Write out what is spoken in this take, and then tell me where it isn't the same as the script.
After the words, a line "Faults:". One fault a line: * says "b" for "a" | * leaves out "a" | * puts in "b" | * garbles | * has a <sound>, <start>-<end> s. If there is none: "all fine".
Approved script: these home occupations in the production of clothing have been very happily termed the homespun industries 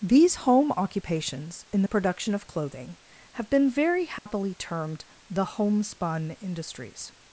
these home occupations in the production of clothing have been very happily termed the homespun industries
Faults:
* has a dropout, 4.2-4.3 s